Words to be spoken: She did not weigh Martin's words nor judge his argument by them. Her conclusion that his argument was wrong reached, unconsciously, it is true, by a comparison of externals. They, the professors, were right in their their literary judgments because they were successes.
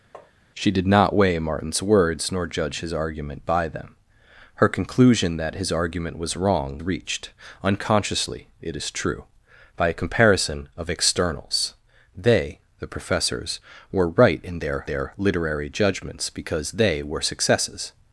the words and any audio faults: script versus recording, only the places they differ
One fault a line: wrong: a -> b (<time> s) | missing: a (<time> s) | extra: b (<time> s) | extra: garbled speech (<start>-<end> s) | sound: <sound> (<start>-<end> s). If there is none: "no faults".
sound: tap (0.1-0.3 s)